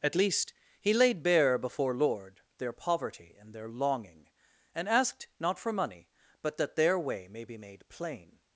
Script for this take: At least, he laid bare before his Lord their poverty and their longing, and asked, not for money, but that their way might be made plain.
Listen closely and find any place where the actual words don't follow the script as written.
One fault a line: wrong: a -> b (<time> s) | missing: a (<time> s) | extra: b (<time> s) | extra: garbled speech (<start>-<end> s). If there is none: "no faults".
missing: his (1.9 s)
wrong: might -> may (7.3 s)